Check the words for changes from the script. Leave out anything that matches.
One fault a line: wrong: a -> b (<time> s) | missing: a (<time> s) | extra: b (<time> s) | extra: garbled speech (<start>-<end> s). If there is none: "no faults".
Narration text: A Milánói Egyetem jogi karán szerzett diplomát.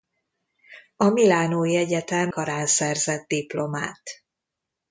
missing: jogi (2.3 s)